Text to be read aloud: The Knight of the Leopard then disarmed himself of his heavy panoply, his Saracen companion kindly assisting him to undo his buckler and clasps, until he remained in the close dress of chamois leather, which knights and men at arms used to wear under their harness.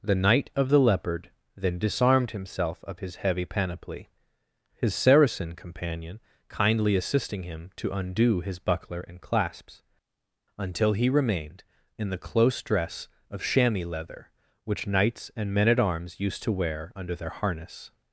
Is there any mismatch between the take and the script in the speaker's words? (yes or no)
no